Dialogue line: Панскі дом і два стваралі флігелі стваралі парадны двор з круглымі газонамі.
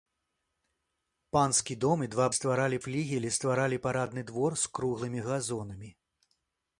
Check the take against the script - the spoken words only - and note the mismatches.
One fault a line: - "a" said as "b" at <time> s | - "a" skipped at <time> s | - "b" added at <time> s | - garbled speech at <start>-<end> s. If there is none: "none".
none